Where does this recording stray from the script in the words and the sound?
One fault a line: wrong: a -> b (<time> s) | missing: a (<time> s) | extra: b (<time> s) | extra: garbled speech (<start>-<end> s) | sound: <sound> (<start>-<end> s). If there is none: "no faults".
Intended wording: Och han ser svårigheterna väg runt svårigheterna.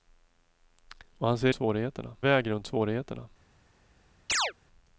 sound: chirp (4.3-4.5 s)